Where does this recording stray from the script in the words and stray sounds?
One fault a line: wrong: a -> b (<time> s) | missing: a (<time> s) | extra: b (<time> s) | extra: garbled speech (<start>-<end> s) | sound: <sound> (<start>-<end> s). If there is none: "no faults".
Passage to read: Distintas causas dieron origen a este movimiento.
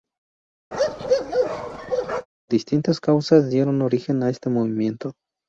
sound: bark (0.7-2.3 s)